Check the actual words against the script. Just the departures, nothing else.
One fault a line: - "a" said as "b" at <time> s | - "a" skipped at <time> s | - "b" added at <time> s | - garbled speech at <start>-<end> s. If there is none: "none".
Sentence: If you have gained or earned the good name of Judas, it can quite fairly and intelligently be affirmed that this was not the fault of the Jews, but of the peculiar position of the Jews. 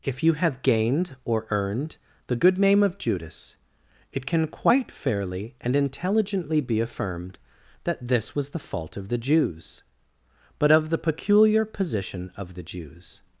- "not" skipped at 8.5 s